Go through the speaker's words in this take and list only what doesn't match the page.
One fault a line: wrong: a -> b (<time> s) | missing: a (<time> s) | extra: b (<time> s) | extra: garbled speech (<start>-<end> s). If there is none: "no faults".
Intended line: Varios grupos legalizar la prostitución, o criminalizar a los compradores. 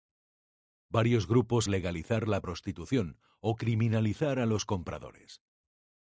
no faults